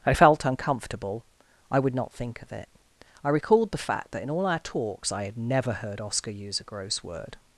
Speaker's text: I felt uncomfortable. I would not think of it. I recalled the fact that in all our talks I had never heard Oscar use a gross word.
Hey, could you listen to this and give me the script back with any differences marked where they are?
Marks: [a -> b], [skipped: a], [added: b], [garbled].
I felt uncomfortable. I would not think of it. I recalled the fact that in all our talks I had never heard Oscar use a gross word.